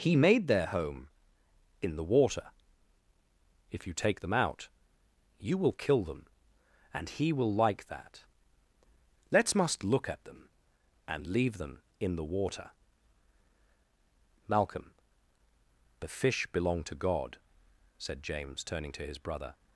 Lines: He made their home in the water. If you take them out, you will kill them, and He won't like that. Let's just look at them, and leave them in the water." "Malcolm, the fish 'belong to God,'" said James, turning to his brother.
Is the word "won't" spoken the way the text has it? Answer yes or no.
no